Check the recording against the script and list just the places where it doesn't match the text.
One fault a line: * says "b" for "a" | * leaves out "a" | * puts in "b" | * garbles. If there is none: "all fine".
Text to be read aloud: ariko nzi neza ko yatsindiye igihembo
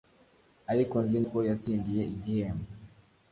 * leaves out "neza"